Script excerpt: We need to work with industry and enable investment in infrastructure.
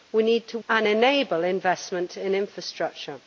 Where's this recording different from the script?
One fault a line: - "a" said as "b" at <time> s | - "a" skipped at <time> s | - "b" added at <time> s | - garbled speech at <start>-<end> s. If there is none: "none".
- "work with industry" skipped at 0.6 s